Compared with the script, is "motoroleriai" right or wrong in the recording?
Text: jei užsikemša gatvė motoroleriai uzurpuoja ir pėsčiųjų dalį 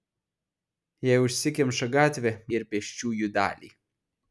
wrong